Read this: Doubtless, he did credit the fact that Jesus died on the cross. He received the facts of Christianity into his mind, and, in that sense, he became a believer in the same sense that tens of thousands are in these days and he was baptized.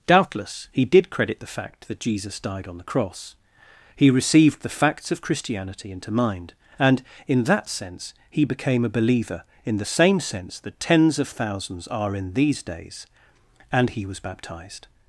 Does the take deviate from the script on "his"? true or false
true